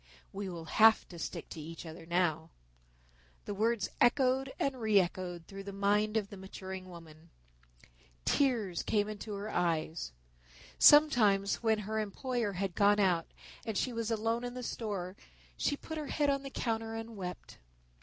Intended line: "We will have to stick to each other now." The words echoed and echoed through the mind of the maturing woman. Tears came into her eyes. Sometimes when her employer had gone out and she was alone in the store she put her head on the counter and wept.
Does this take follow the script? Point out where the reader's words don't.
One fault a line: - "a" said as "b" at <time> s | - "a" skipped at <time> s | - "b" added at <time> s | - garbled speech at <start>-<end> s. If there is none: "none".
- "re" added at 4.8 s